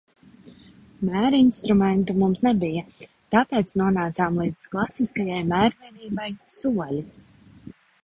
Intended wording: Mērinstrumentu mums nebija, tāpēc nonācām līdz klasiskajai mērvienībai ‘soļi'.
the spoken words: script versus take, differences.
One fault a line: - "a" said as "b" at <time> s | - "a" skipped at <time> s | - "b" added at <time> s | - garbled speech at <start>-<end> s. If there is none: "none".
none